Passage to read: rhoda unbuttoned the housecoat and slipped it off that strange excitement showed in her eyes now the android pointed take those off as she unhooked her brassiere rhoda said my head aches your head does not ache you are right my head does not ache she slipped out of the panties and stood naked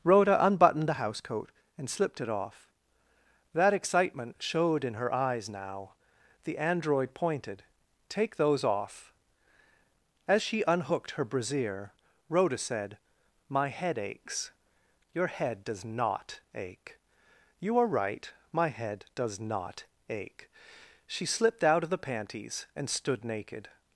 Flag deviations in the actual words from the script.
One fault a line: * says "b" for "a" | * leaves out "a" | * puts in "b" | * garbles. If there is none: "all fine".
* leaves out "strange"